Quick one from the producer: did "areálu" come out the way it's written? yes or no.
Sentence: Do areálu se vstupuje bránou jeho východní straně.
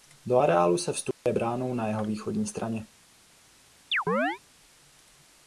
yes